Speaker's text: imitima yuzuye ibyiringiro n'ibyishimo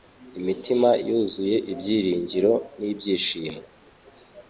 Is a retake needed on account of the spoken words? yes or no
no